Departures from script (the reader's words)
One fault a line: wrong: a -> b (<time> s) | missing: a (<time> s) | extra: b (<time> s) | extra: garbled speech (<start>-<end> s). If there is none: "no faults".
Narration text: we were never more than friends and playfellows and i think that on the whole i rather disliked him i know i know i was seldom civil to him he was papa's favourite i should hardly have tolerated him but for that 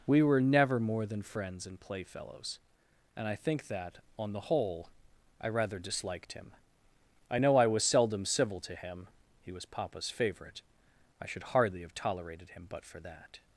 missing: know i (7.7 s)